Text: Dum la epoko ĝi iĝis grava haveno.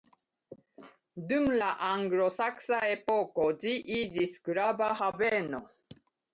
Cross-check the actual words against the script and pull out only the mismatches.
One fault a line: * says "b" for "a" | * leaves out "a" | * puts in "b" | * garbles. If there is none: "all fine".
* puts in "anglosaksa"